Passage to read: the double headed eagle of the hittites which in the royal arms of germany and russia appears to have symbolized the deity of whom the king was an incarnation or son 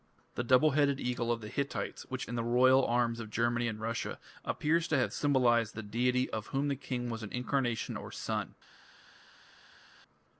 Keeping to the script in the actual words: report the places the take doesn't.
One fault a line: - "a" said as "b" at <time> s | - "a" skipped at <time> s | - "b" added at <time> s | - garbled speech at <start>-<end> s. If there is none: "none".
none